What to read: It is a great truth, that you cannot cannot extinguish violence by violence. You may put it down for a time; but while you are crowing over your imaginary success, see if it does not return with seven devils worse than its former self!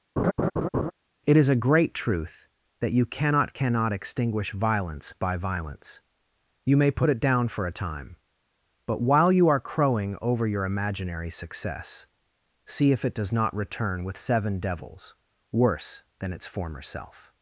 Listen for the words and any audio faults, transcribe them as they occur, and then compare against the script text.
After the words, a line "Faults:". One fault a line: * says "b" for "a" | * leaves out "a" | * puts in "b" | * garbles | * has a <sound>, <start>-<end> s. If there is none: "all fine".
It is a great truth, that you cannot cannot extinguish violence by violence. You may put it down for a time; but while you are crowing over your imaginary success, see if it does not return with seven devils worse than its former self!
Faults:
* has a laugh, 0.2-0.9 s